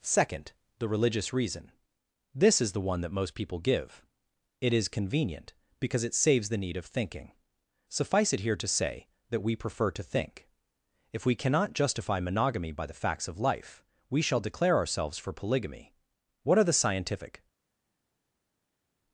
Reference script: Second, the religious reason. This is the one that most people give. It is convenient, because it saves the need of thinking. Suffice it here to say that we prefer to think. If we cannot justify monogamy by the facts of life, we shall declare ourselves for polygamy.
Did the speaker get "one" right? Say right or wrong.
right